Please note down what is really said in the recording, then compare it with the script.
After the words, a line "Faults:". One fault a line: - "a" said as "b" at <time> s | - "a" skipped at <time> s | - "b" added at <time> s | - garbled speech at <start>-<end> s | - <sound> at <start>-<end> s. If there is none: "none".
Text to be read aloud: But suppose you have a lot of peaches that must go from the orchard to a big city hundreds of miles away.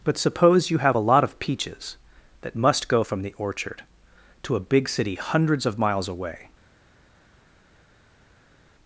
But suppose you have a lot of peaches that must go from the orchard to a big city hundreds of miles away.
Faults:
none